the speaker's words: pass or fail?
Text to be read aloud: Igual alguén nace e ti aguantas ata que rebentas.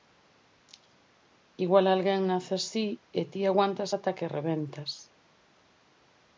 fail